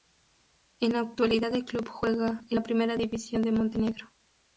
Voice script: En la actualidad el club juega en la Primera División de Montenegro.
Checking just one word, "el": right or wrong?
right